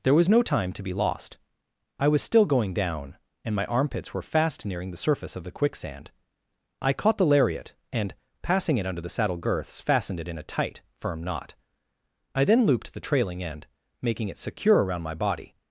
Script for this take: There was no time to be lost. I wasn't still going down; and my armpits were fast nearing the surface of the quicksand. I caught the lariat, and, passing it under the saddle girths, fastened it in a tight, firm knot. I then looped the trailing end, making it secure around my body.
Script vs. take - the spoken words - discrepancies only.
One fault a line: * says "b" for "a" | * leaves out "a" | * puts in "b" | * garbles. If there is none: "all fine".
* says "was" for "wasn't"